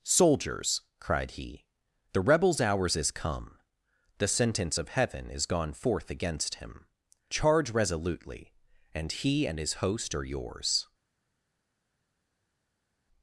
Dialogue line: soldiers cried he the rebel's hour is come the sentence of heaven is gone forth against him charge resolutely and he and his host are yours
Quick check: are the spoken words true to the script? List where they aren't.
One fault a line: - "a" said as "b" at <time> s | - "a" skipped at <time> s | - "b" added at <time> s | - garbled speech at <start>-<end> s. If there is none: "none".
- "hour" said as "hours" at 2.6 s